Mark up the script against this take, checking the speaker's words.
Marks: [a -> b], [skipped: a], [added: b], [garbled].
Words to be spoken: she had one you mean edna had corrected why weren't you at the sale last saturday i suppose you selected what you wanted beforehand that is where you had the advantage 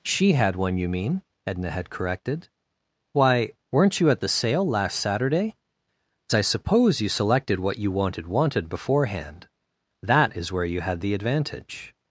she had one you mean edna had corrected why weren't you at the sale last saturday i suppose you selected what you wanted [added: wanted] beforehand that is where you had the advantage